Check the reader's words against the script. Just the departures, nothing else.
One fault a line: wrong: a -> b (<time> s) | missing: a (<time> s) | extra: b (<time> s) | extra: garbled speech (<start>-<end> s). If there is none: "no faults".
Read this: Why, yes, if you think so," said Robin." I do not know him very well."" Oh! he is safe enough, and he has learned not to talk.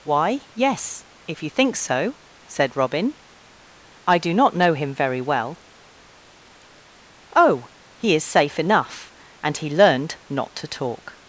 missing: has (9.7 s)